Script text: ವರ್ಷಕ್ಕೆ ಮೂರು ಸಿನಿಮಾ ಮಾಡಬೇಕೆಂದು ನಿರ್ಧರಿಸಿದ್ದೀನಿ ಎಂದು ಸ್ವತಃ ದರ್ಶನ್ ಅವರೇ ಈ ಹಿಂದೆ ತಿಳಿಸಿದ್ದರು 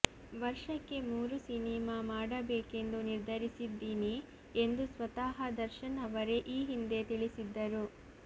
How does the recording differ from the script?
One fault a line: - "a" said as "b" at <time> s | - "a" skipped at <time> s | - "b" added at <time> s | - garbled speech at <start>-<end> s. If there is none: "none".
none